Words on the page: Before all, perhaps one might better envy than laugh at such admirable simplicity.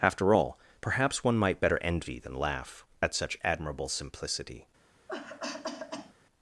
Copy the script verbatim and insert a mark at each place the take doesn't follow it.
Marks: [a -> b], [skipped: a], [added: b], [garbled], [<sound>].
[Before -> After] all, perhaps one might better envy than laugh at such admirable simplicity. [cough]